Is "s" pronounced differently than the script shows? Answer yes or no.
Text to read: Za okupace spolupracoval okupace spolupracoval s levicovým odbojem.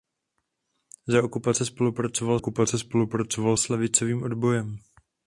no